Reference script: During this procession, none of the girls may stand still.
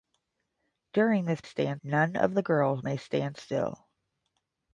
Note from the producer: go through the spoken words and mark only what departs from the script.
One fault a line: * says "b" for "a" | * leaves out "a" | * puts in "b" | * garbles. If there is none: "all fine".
* says "stand" for "procession"